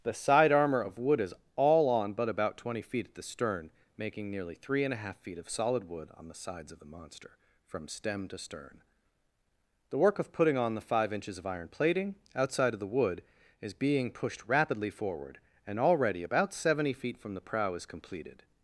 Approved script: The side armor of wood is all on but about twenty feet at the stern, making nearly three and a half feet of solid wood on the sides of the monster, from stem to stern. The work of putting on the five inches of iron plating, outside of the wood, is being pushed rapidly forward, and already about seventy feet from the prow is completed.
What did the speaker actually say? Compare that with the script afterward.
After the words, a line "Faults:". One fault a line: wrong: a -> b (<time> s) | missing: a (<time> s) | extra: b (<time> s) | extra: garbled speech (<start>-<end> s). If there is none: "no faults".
The side armor of wood is all on but about twenty feet at the stern, making nearly three and a half feet of solid wood on the sides of the monster, from stem to stern. The work of putting on the five inches of iron plating, outside of the wood, is being pushed rapidly forward, and already about seventy feet from the prow is completed.
Faults:
no faults